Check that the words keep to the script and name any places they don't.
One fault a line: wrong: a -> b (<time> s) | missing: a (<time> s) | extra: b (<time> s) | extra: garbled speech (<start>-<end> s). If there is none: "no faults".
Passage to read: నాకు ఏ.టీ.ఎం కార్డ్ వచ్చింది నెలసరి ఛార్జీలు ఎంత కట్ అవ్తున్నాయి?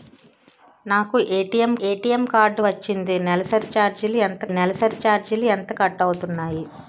extra: ఏ.టీ.ఎం (1.8 s)
extra: నెలసరి ఛార్జీలు ఎంత (4.6 s)